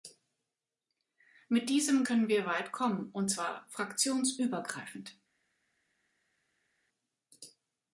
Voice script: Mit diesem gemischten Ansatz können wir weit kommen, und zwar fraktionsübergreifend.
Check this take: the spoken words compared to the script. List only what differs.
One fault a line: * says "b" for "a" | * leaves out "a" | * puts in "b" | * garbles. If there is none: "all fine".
* leaves out "gemischten Ansatz"